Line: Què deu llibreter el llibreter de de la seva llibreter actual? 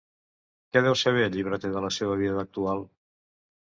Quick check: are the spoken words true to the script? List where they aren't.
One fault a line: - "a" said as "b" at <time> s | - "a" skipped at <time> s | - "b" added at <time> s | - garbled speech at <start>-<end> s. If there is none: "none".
- "llibreter" said as "saber" at 1.0 s
- "de" skipped at 1.9 s
- "llibreter" said as "vida" at 2.2 s